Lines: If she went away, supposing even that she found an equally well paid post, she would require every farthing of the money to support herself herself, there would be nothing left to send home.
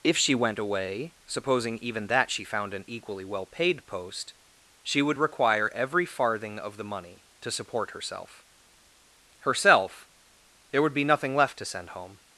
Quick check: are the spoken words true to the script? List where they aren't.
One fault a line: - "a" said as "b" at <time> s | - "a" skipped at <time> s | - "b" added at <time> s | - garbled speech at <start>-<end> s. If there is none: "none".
none